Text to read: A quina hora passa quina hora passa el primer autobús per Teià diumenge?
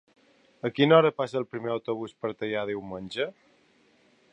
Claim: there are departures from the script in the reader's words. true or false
true